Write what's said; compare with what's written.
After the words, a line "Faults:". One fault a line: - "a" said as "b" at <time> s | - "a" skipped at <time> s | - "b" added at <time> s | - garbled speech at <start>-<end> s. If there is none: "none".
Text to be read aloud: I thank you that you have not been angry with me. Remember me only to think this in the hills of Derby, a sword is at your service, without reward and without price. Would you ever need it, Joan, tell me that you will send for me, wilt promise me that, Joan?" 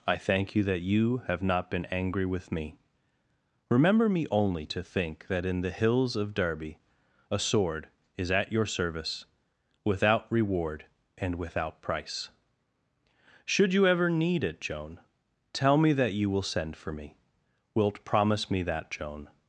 I thank you that you have not been angry with me. Remember me only to think that in the hills of Derby, a sword is at your service, without reward and without price. Should you ever need it, Joan, tell me that you will send for me, wilt promise me that, Joan?"
Faults:
- "this" said as "that" at 5.3 s
- "Would" said as "Should" at 13.4 s